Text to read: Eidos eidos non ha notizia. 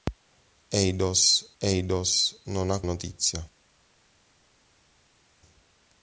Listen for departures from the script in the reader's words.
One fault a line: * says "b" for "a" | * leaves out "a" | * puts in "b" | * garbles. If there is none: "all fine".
all fine